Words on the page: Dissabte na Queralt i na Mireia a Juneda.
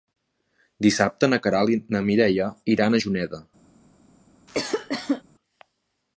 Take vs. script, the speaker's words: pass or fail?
fail